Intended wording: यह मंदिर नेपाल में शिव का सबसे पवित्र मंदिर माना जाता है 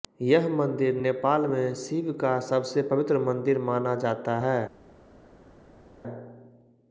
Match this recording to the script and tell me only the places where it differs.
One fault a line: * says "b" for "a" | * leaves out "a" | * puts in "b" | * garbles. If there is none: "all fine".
all fine